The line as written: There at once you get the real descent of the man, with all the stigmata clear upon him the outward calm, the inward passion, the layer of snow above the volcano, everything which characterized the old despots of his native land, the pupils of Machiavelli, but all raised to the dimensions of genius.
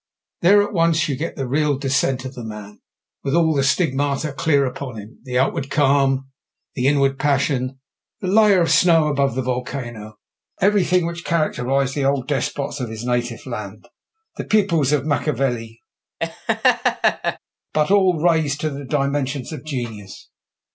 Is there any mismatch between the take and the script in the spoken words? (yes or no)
no